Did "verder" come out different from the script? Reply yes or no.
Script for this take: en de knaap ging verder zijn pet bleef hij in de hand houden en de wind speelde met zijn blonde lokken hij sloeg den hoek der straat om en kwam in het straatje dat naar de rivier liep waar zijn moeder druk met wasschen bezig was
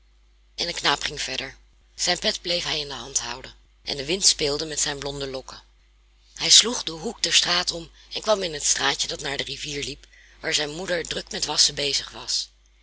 no